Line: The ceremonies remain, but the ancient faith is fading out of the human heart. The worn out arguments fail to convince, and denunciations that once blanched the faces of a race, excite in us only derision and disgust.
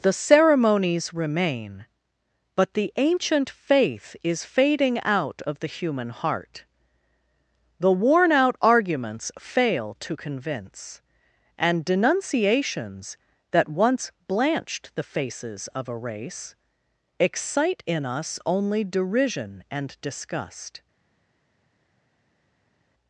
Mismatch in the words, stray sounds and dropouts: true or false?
false